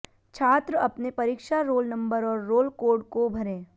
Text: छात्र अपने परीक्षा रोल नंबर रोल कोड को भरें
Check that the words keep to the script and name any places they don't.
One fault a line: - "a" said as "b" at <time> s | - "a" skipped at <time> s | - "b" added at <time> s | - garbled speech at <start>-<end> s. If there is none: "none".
- "और" added at 2.2 s